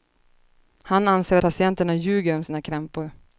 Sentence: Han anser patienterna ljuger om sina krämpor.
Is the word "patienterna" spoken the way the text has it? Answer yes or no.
yes